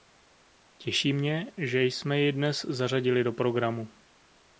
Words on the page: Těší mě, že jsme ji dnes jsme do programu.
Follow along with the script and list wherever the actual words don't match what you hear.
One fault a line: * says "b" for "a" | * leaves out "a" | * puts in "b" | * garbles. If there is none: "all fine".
* says "zařadili" for "jsme"